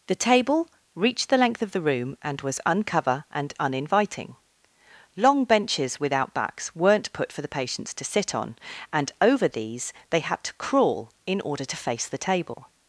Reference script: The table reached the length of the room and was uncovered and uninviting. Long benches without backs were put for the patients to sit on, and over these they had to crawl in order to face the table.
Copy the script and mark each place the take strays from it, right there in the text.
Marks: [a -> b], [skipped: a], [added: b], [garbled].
The table reached the length of the room and was [uncovered -> uncover] and uninviting. Long benches without backs [were -> weren't] put for the patients to sit on, and over these they had to crawl in order to face the table.